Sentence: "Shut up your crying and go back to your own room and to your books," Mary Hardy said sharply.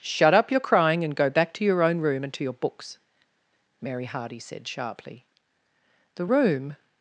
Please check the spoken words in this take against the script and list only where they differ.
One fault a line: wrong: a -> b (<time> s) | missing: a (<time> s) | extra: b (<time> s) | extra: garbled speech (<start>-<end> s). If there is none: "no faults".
extra: The room (6.2 s)